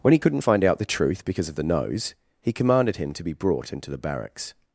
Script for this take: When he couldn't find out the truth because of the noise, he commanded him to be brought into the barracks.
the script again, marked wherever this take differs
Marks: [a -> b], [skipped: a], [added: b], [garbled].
When he couldn't find out the truth because of the [noise, -> nose] he commanded him to be brought into the barracks.